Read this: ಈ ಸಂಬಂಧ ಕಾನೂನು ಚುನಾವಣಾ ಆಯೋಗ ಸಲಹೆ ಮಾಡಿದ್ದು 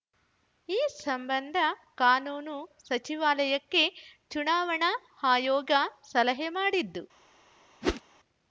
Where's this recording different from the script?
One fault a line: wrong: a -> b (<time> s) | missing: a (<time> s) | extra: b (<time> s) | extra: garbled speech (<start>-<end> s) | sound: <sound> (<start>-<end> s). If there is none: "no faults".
extra: ಸಚಿವಾಲಯಕ್ಕೆ (2.8 s)
sound: whoosh (7.8-8.0 s)